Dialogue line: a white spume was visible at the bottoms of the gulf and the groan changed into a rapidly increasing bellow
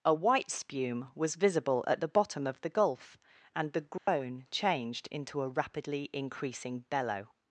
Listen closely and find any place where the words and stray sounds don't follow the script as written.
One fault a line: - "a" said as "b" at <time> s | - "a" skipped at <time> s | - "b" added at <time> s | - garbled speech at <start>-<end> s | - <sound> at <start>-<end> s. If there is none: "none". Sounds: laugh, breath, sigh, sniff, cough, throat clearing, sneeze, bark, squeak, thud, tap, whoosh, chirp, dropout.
- "bottoms" said as "bottom" at 2.1 s
- dropout at 4.0-4.1 s